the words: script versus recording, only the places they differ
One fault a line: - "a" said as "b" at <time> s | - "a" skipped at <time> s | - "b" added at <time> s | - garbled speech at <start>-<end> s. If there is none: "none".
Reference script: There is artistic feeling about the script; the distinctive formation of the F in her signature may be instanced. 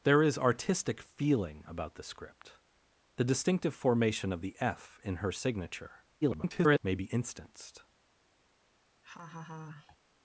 - garbled speech at 6.2-6.8 s